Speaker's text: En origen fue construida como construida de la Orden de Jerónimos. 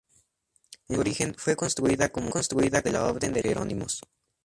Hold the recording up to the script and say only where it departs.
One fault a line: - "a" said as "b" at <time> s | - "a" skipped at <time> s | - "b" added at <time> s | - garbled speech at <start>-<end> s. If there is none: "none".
none